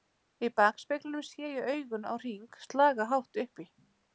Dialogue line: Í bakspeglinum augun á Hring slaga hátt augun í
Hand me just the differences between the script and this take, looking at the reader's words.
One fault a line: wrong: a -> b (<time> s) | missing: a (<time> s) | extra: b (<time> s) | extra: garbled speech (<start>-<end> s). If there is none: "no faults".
extra: sé ég (1.3 s)
wrong: augun -> upp (3.4 s)